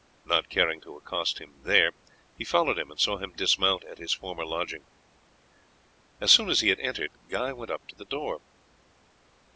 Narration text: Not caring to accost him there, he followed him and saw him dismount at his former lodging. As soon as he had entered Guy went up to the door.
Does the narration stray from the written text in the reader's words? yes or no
no